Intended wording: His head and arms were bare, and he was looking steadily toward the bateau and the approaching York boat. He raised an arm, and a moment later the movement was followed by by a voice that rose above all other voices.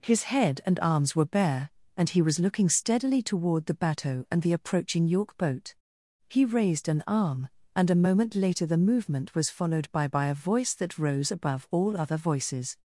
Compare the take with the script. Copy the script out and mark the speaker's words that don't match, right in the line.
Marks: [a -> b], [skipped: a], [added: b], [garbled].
His head and arms were bare, and he was looking steadily toward the bateau and the approaching York boat. He raised an arm, and a moment later the movement was followed by by a voice that rose above all other voices.